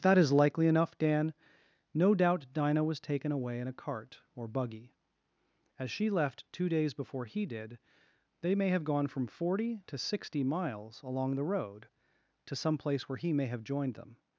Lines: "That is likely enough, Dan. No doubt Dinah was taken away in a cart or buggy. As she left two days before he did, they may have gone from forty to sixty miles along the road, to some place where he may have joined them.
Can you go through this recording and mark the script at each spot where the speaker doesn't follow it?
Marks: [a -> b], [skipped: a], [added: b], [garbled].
"That is likely enough, Dan. No doubt Dinah was taken away in a cart or buggy. As she left two days before he did, they may have gone from forty to sixty miles along the road, to some place where he may have joined them.